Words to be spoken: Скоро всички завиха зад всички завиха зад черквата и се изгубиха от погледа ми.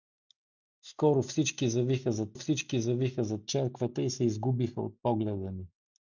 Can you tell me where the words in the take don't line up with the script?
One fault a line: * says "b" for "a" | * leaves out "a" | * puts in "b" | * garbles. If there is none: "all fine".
all fine